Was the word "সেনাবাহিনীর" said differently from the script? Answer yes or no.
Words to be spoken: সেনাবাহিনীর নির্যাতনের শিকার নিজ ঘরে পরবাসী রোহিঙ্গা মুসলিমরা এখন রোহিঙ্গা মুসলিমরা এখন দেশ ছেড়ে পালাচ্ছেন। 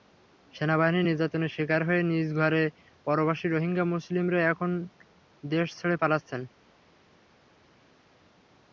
no